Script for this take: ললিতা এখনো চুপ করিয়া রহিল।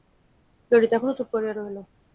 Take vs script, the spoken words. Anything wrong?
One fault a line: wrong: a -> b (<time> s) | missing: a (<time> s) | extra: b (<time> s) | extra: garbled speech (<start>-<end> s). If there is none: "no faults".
no faults